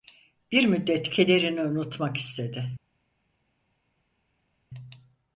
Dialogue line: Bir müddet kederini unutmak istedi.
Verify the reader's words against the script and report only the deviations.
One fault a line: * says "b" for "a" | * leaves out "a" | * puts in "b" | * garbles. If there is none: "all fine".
all fine